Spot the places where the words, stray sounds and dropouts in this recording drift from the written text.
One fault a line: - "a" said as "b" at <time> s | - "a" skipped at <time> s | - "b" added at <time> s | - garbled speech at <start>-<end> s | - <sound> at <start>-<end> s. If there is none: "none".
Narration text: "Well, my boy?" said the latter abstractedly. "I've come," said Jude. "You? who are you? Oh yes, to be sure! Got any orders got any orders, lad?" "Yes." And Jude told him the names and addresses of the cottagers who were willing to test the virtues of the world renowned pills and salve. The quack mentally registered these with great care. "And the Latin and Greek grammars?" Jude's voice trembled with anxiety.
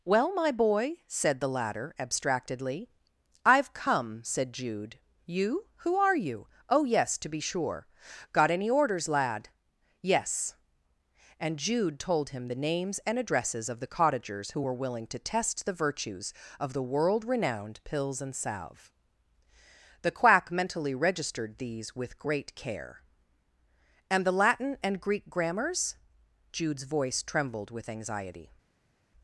- "got any orders" skipped at 9.1 s